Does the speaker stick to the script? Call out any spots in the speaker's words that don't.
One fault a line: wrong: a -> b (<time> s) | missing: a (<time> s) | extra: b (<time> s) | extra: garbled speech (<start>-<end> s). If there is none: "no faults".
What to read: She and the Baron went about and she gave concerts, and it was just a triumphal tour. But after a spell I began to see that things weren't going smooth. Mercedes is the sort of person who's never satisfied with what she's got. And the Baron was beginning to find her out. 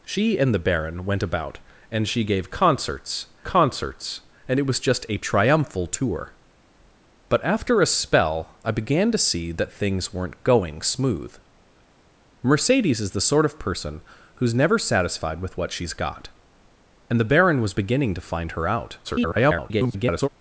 extra: concerts (3.4 s)
extra: garbled speech (19.0-20.3 s)